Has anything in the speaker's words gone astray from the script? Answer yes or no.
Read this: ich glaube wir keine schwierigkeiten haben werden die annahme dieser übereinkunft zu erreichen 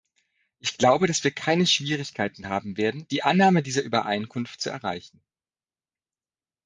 yes